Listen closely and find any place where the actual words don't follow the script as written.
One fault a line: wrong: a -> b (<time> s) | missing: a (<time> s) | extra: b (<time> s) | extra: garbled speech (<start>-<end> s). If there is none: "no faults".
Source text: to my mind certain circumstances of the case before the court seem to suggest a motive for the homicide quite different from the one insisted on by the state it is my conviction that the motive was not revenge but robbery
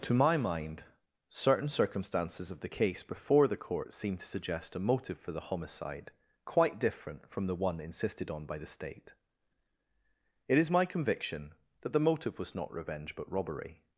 no faults